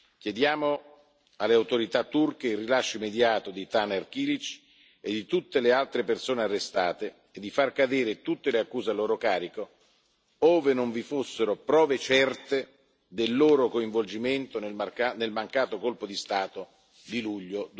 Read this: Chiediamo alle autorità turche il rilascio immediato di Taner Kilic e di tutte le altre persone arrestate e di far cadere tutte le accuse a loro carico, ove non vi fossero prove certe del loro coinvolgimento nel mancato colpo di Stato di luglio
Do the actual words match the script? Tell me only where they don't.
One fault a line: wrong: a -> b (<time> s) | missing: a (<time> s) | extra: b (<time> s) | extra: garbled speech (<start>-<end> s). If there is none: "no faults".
no faults